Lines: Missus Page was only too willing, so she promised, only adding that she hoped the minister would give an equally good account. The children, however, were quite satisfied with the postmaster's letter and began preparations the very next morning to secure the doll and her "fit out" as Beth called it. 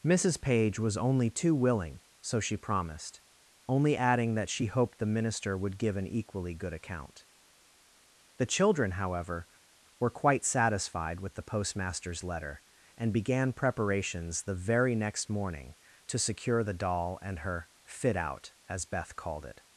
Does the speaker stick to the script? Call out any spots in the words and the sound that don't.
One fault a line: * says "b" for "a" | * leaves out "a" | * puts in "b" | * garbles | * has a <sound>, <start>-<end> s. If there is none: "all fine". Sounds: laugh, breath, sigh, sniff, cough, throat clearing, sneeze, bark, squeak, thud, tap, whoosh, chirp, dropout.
all fine